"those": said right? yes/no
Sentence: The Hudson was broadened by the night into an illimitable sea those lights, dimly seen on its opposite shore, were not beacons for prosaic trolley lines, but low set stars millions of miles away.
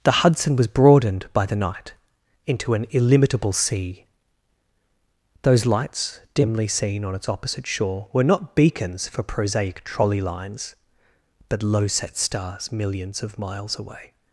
yes